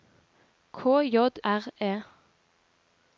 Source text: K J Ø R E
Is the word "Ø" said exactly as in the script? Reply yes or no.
no